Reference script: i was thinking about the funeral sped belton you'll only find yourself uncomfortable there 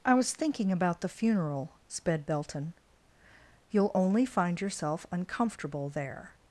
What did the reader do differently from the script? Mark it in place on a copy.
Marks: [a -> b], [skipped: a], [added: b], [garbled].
i was thinking about the funeral sped belton you'll only find yourself uncomfortable there